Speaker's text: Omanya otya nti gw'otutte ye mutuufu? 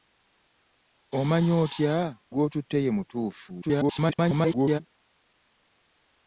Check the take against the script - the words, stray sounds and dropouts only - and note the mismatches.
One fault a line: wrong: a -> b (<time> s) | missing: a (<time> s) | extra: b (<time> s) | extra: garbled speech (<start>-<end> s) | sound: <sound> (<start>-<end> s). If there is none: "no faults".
missing: nti (1.9 s)
extra: garbled speech (3.6-4.8 s)